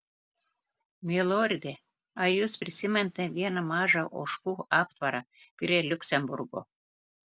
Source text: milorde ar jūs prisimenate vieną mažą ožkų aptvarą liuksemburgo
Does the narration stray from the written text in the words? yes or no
yes